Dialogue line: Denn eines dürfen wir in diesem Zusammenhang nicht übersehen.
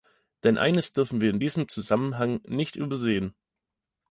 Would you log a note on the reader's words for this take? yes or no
no